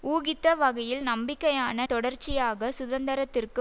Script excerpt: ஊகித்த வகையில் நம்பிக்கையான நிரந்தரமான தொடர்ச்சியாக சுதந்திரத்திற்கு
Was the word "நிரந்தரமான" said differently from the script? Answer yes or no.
yes